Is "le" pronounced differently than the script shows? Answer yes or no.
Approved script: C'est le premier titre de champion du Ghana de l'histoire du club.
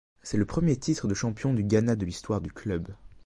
no